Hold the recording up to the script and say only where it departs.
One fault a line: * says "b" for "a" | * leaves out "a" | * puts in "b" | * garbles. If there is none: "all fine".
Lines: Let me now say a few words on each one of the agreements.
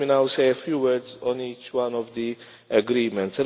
all fine